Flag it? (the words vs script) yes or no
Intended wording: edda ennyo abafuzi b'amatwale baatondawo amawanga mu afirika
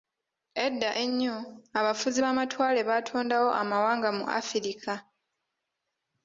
no